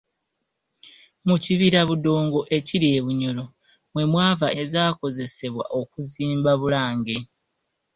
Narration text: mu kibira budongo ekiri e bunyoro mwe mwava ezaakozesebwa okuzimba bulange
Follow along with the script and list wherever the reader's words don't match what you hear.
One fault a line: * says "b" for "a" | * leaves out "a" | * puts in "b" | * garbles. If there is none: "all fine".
all fine